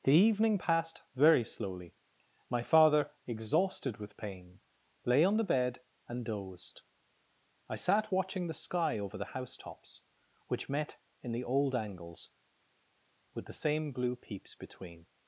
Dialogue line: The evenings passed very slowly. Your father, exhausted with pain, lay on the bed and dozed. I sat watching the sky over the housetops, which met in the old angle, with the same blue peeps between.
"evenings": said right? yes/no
no